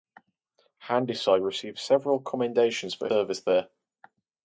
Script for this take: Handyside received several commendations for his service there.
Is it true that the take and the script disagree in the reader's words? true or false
true